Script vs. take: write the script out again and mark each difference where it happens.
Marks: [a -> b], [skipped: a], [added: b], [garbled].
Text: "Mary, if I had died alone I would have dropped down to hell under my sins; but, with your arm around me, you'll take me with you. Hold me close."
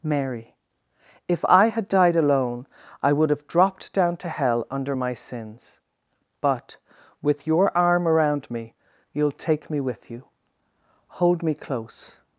"Mary, if I had died alone I would have dropped down to hell under my sins; but, with your arm around me, you'll take me with you. Hold me close."